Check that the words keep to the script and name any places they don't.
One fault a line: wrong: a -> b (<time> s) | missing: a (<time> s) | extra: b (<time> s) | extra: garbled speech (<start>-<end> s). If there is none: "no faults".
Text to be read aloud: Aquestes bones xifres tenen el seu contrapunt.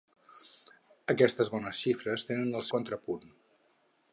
missing: seu (2.6 s)